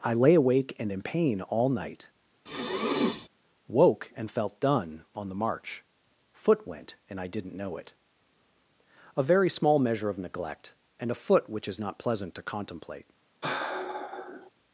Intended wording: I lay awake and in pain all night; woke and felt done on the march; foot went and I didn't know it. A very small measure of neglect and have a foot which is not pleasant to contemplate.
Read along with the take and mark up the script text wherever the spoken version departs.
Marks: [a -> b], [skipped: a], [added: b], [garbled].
I lay awake and in pain all night; woke and felt done on the march; foot went and I didn't know it. A very small measure of neglect and [skipped: have] a foot which is not pleasant to contemplate.